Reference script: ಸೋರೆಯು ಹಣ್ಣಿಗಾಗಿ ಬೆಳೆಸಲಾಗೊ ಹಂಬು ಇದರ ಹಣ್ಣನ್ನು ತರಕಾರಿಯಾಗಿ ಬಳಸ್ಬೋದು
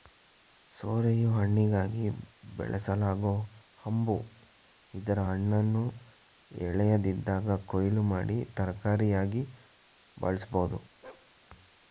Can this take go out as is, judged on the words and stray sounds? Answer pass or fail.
fail